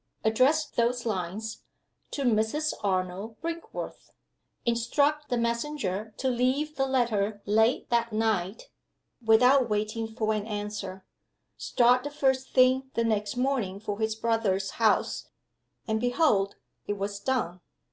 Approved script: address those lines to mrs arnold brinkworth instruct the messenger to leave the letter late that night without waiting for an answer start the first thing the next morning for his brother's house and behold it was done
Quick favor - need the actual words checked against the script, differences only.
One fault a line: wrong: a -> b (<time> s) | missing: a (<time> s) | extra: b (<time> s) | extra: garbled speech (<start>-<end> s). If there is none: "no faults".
no faults